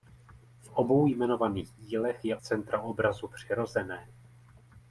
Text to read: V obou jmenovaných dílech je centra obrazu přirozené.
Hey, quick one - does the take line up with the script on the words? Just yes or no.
yes